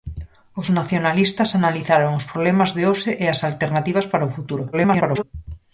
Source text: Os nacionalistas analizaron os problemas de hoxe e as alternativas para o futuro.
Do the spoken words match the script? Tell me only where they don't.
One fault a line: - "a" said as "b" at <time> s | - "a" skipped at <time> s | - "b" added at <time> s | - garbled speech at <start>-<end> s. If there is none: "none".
- garbled speech at 4.7-5.2 s